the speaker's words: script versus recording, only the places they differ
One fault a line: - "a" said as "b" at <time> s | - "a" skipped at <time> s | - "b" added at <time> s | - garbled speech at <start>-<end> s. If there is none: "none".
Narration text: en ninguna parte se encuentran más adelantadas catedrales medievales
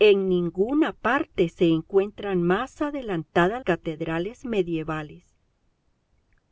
none